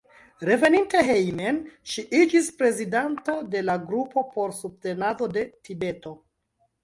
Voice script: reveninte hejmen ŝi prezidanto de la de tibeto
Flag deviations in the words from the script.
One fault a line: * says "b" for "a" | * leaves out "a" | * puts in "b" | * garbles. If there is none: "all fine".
* puts in "iĝis"
* puts in "grupo por subtenado"